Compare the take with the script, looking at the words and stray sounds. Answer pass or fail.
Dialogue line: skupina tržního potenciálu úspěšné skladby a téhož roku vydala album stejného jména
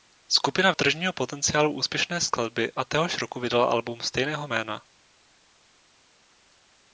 pass